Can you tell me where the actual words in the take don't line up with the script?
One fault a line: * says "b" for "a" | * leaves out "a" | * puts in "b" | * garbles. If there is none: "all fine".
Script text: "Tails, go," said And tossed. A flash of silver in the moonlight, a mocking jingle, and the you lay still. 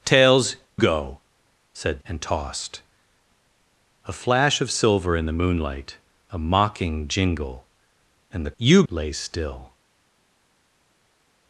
all fine